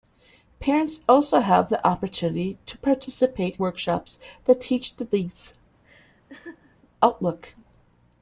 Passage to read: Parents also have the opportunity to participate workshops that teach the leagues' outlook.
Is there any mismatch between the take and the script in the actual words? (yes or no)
no